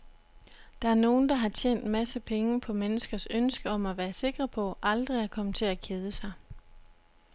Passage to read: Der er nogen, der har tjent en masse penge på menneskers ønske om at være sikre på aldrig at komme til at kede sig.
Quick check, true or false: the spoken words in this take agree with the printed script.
true